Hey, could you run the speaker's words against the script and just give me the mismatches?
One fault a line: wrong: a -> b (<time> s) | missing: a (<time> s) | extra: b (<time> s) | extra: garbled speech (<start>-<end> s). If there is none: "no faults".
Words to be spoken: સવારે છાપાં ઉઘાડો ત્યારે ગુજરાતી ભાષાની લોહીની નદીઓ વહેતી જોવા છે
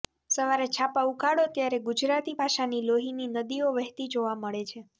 extra: મળે (4.4 s)